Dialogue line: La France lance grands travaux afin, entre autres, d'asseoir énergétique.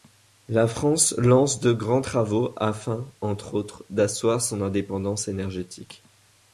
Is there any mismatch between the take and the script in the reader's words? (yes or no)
yes